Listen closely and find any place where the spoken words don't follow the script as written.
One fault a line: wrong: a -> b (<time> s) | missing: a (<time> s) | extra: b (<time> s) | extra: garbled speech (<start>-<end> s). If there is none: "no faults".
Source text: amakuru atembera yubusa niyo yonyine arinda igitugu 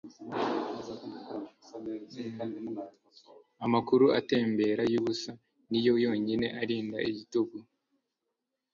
no faults